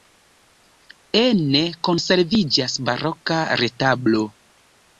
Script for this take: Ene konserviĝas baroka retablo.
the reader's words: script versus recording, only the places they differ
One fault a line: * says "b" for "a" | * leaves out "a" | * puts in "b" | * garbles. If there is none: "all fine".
all fine